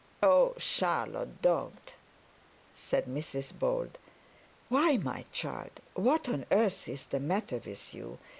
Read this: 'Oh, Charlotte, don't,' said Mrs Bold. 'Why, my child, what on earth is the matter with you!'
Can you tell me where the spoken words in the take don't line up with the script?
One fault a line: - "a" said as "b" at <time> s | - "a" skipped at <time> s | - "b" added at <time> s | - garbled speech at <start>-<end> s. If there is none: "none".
none